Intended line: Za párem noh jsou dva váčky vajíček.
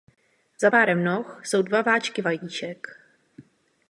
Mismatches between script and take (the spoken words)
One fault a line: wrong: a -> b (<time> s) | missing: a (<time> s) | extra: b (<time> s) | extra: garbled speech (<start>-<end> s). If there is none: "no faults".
no faults